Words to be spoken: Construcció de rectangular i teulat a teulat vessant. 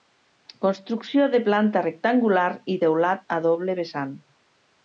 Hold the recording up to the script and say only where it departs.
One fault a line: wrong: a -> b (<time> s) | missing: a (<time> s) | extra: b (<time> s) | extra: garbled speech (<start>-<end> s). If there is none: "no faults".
extra: planta (1.5 s)
wrong: teulat -> doble (3.5 s)